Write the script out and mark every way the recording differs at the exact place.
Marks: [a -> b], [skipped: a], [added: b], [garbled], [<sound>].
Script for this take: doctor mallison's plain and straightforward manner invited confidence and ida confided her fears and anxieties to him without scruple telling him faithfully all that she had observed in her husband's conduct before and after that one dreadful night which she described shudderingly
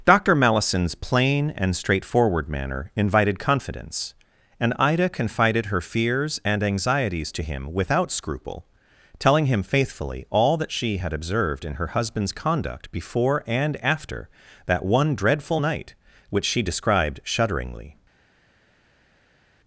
doctor mallison's plain and straightforward manner invited confidence and ida confided her fears and anxieties to him without scruple telling him faithfully all that she had observed in her husband's conduct before and after that one dreadful night which she described shudderingly